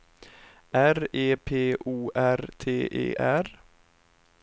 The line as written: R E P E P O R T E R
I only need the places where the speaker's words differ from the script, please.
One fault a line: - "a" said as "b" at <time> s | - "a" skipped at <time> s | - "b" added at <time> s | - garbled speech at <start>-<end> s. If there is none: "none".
- "E P" skipped at 1.8 s